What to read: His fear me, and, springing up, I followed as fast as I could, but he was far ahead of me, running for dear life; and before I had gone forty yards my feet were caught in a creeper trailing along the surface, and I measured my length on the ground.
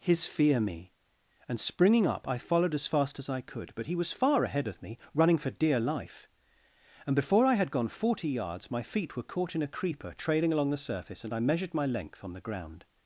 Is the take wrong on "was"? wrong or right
right